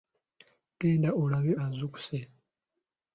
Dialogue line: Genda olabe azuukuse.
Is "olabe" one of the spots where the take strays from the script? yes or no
no